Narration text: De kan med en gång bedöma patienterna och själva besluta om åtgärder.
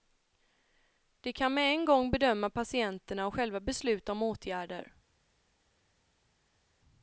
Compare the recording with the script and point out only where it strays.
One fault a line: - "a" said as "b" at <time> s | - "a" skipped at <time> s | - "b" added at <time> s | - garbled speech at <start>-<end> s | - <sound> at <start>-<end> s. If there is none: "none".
none